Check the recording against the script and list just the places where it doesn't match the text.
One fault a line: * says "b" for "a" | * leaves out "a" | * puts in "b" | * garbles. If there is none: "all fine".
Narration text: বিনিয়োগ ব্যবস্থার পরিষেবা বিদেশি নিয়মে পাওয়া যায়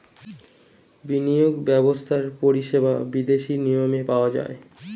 all fine